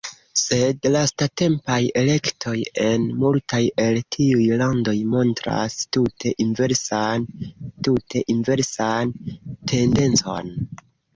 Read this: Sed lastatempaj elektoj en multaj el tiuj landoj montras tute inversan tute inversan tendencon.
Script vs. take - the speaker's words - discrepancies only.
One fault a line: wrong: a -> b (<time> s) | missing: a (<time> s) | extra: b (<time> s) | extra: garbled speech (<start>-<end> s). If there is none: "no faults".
no faults